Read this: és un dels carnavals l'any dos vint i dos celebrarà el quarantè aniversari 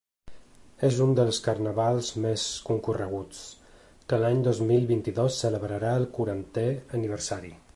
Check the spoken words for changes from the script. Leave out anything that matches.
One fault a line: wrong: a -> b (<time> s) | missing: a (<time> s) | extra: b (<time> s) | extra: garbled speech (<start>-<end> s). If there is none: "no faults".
extra: més concorreguts que (2.2 s)
extra: mil (4.7 s)